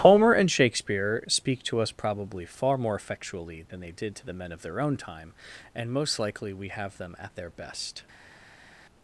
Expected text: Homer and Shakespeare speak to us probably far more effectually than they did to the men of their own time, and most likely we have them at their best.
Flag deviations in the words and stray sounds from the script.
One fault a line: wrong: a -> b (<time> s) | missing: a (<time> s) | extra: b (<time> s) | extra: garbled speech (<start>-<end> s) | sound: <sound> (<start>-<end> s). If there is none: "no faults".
no faults